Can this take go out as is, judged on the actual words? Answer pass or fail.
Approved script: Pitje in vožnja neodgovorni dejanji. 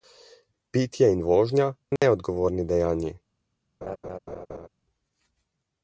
pass